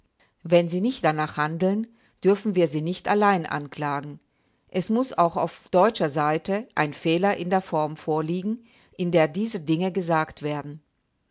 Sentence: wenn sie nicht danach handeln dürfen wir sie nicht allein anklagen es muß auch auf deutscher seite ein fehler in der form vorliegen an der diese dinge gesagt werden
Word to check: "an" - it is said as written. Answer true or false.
false